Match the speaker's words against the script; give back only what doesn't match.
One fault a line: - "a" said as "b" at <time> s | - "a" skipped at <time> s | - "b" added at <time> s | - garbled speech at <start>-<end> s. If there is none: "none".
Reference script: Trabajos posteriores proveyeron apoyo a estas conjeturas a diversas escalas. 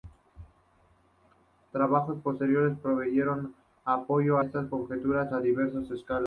- "a" skipped at 4.4 s